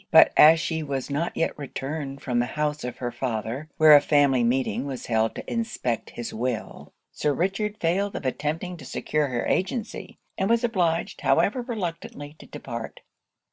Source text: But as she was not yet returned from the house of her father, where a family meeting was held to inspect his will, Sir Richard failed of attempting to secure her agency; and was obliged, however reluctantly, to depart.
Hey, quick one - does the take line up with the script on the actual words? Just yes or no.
yes